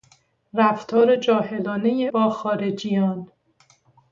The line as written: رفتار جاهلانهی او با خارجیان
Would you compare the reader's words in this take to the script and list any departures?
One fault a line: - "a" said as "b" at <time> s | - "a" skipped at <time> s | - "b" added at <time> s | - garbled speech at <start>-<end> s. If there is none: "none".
- "او" skipped at 2.1 s